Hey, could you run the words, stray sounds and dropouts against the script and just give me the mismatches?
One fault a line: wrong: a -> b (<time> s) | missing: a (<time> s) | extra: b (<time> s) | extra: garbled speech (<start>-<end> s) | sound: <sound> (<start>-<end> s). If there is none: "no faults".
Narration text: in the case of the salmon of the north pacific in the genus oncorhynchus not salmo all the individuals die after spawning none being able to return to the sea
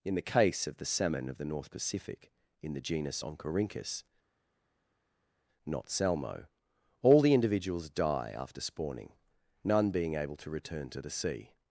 no faults